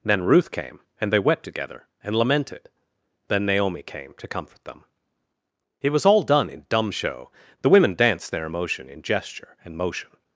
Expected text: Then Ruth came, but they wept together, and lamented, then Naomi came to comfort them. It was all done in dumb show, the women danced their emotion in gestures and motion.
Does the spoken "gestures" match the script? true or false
false